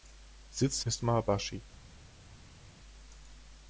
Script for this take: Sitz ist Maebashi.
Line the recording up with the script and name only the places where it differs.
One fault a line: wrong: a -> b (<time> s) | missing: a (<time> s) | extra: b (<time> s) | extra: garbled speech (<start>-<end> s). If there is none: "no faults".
no faults